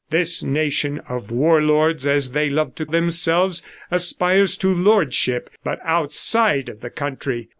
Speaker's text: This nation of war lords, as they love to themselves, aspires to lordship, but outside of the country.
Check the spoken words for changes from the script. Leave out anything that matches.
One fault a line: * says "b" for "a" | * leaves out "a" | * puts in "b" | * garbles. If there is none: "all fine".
all fine